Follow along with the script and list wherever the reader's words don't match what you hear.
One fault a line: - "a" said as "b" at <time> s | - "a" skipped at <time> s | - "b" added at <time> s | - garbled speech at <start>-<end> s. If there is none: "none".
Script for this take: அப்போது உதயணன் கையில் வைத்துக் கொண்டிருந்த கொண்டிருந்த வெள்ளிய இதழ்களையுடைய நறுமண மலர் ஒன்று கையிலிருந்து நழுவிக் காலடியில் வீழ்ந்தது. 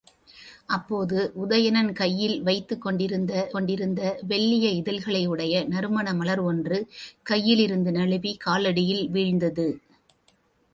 none